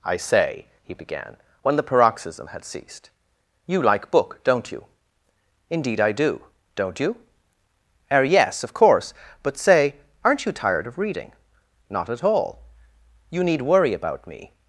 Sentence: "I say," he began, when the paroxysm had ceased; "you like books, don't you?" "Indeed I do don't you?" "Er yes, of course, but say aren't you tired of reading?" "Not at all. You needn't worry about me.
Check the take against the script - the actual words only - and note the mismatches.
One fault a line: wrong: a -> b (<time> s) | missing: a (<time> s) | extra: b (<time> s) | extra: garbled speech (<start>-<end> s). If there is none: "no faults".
wrong: books -> book (4.1 s)
wrong: needn't -> need (13.4 s)